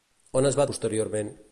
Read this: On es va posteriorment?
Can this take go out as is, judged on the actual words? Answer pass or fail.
pass